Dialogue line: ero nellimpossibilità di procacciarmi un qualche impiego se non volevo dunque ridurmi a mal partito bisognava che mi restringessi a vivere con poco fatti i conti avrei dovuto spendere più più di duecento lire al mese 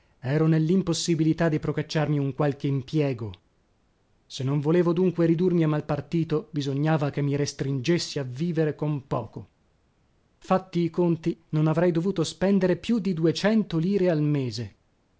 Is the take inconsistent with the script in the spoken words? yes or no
yes